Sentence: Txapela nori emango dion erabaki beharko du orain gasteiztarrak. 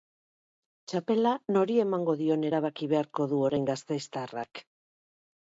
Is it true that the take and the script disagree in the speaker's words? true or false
false